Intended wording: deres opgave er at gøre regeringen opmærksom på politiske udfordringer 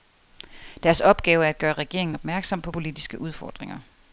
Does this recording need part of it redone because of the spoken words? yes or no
no